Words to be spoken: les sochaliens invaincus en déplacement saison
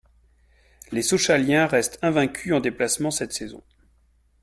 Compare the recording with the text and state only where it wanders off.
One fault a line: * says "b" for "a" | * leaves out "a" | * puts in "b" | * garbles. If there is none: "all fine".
* puts in "restent"
* puts in "cette"